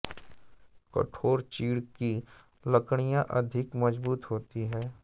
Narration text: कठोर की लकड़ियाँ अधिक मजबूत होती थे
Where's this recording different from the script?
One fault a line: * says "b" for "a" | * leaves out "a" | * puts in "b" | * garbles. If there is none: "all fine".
* puts in "चीड़"
* says "हैं" for "थे"